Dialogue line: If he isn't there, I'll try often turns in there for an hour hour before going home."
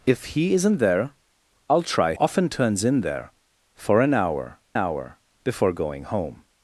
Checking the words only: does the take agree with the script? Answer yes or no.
yes